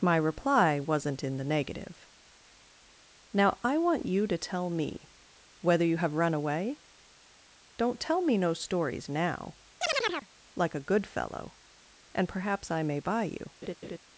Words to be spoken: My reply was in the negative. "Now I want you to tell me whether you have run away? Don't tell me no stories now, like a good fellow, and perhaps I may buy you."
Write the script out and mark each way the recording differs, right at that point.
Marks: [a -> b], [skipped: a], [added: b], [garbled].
My reply [was -> wasn't] in the negative. "Now I want you to tell me whether you have run away? Don't tell me no stories now, like a good fellow, and perhaps I may buy you."